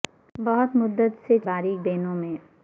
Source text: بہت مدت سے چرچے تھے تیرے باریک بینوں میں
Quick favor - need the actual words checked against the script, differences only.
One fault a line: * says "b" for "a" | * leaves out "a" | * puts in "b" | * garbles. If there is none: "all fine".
* leaves out "چرچے تھے تیرے"